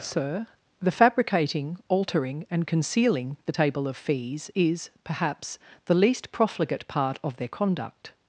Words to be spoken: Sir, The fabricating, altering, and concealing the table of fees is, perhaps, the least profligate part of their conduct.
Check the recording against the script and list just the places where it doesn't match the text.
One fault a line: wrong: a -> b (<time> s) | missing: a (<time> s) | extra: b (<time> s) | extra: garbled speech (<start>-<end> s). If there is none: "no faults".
no faults